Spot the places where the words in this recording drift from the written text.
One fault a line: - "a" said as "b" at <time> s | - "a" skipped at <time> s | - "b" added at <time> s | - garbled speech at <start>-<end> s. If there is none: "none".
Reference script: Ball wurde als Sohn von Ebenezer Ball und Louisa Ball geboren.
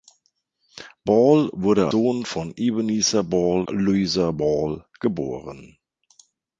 - "als" skipped at 1.9 s
- "und" skipped at 3.7 s